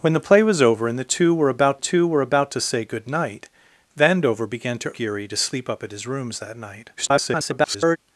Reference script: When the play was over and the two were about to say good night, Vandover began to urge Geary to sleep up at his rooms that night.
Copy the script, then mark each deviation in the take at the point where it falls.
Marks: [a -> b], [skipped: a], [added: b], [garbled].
When the play was over and the two were about [added: two were about] to say good night, Vandover began to [skipped: urge] Geary to sleep up at his rooms that night. [garbled]